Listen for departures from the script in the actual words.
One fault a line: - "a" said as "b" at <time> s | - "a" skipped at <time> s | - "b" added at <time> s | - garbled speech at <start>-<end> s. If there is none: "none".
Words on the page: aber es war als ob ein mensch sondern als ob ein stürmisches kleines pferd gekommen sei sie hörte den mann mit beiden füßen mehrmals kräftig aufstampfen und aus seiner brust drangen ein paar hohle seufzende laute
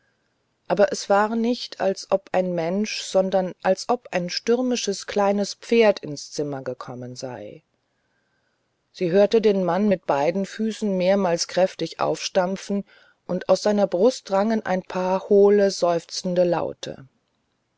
- "nicht" added at 1.4 s
- "ins zimmer" added at 6.0 s